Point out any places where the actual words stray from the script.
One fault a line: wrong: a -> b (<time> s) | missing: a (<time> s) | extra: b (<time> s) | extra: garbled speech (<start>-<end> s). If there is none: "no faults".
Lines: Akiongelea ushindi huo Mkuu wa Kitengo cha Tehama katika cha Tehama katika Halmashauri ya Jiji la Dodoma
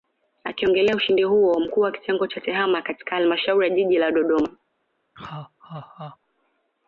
missing: cha Tehama katika (3.2 s)